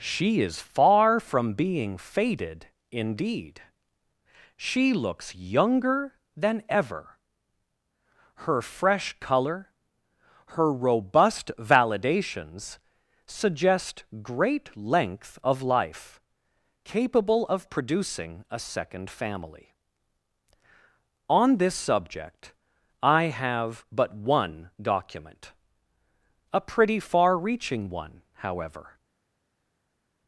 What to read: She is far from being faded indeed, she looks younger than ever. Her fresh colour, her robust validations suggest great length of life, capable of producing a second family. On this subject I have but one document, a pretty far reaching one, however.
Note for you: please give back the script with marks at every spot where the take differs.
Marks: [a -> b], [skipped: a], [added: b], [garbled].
She is far from being faded indeed, she looks younger than ever. Her fresh colour, her robust validations suggest great length of life, capable of producing a second family. On this subject I have but one document, a pretty far reaching one, however.